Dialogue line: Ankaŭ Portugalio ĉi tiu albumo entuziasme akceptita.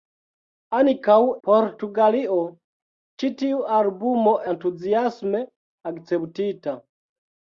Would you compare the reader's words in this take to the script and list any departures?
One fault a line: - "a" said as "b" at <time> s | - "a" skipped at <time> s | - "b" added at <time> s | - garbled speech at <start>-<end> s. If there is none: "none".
none